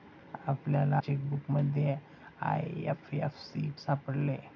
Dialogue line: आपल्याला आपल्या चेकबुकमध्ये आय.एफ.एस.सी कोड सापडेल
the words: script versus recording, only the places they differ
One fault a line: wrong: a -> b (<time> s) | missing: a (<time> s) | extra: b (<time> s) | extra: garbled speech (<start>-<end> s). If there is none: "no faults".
missing: आपल्या (1.0 s)
missing: कोड (3.7 s)